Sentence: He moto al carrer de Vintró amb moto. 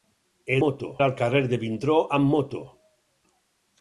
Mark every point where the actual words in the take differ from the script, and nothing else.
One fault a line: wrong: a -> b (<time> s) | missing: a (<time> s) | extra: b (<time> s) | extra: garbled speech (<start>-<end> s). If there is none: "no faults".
no faults